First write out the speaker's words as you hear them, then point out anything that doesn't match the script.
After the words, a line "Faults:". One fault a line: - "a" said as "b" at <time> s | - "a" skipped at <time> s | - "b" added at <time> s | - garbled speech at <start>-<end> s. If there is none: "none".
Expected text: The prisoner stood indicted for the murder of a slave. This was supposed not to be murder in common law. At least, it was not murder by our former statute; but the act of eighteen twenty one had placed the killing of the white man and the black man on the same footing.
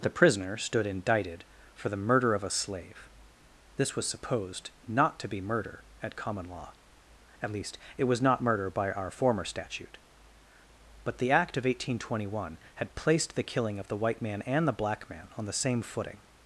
The prisoner stood indicted for the murder of a slave. This was supposed not to be murder at common law. At least, it was not murder by our former statute; but the act of eighteen twenty one had placed the killing of the white man and the black man on the same footing.
Faults:
- "in" said as "at" at 6.0 s